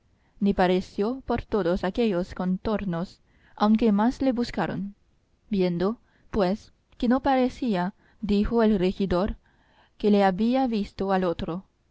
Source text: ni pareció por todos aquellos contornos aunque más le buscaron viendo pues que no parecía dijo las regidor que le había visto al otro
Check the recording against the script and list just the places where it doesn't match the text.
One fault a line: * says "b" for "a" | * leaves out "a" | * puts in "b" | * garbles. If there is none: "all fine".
* says "el" for "las"